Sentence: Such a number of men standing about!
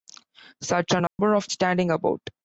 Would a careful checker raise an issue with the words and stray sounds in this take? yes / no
yes